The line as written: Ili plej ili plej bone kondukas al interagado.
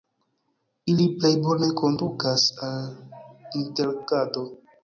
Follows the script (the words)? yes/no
no